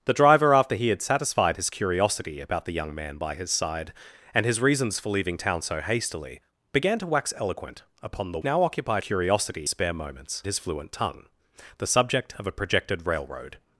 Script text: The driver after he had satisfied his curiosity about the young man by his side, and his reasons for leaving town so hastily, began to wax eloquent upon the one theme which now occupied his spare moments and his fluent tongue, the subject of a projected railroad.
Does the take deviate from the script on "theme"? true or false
true